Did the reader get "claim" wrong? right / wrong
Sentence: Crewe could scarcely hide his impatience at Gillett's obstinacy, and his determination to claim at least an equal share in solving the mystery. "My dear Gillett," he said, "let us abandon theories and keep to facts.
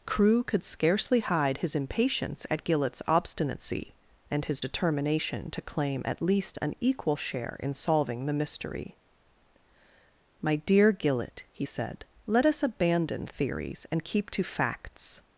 right